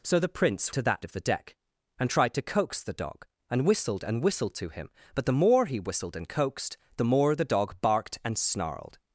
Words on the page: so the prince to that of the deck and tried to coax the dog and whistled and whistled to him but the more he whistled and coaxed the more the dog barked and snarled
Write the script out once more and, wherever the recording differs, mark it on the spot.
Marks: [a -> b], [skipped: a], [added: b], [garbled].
so the prince to that of the deck and tried to coax the dog and whistled and whistled to him but the more he whistled and coaxed the more the dog barked and snarled